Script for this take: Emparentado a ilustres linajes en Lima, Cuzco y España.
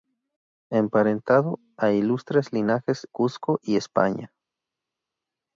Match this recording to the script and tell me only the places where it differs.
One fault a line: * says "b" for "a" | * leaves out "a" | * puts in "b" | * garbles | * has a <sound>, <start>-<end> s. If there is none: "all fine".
* leaves out "en Lima"